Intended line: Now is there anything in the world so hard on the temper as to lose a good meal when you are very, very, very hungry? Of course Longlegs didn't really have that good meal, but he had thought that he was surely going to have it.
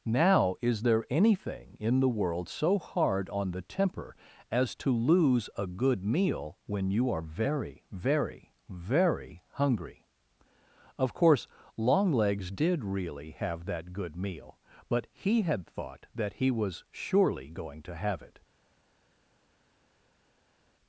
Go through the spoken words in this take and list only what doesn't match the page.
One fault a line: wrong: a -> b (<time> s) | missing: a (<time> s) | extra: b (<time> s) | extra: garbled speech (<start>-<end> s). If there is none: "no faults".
wrong: didn't -> did (12.5 s)